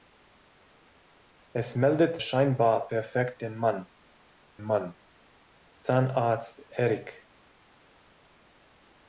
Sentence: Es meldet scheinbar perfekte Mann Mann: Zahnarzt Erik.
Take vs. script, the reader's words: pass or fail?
pass